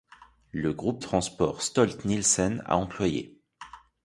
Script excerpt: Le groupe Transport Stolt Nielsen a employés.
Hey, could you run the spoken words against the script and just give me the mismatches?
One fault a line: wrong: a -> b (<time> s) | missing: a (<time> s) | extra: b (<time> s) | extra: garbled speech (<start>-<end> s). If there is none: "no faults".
no faults